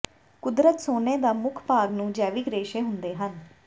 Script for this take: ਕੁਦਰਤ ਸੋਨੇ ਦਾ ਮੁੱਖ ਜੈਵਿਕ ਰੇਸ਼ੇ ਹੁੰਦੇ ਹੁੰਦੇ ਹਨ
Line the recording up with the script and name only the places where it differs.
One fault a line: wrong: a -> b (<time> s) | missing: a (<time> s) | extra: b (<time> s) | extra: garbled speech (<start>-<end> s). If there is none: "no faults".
extra: ਭਾਗ ਨੂੰ (1.7 s)
missing: ਹੁੰਦੇ (3.1 s)